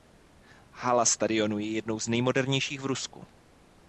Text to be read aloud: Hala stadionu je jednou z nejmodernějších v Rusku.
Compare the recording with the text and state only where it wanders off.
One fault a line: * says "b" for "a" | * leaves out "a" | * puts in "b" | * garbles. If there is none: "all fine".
all fine